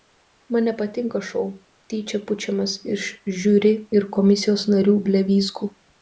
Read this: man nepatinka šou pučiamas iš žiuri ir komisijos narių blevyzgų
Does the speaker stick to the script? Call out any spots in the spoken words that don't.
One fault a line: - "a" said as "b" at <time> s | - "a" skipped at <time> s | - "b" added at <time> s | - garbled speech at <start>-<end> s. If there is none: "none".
- "tyčia" added at 1.9 s